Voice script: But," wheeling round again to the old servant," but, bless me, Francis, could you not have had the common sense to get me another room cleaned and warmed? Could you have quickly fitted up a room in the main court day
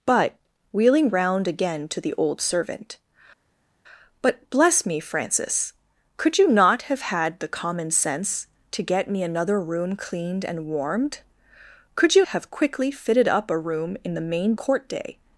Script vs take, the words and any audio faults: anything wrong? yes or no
no